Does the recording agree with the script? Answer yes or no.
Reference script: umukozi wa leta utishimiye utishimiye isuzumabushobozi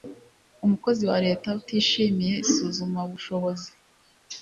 no